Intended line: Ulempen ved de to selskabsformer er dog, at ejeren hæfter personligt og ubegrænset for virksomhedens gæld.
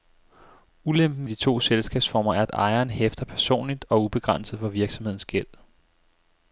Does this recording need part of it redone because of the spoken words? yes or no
yes